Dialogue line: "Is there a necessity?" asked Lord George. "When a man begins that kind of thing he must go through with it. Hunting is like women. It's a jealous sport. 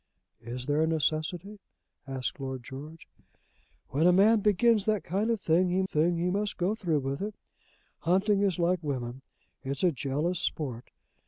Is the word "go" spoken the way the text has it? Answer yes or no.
yes